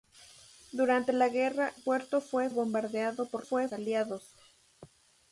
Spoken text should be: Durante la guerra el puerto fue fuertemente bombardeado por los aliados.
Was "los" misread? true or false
true